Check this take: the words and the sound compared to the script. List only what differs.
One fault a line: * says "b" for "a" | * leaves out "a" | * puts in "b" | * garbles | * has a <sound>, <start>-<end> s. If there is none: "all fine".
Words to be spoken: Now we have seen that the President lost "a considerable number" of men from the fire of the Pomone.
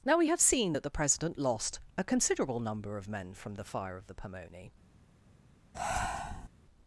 * has a breath, 5.7-6.5 s